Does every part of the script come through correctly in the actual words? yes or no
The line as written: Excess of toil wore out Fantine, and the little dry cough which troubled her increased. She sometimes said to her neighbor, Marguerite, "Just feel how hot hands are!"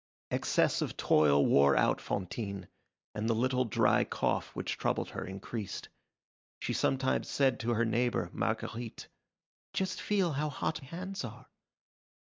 yes